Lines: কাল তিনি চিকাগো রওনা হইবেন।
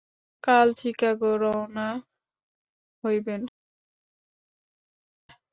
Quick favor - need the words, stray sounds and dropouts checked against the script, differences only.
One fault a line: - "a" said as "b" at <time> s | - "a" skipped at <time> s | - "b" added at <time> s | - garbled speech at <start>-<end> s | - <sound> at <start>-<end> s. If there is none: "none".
- "তিনি" skipped at 0.7 s